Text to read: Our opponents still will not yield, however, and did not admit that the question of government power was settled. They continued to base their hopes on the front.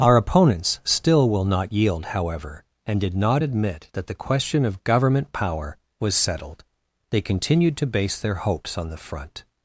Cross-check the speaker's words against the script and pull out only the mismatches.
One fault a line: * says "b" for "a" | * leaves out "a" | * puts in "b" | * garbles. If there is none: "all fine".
all fine